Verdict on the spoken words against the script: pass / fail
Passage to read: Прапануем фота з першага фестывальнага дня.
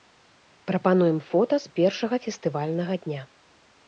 pass